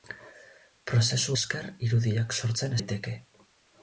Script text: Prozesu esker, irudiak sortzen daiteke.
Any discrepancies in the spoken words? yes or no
no